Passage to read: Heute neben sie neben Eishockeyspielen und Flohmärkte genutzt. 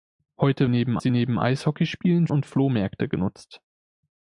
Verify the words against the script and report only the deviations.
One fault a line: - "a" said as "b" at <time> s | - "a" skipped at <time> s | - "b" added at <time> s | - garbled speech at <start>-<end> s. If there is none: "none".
none